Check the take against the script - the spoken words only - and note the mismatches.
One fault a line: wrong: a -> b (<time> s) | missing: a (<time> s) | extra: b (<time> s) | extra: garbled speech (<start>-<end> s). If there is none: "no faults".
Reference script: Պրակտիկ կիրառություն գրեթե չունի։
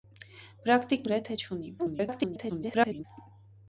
missing: կիրառություն (1.0 s)
extra: garbled speech (1.8-3.0 s)